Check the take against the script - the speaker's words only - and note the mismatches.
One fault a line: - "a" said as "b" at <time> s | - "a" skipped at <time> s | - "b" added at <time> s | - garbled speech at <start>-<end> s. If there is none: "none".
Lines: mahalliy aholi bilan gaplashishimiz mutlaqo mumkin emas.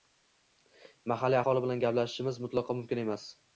none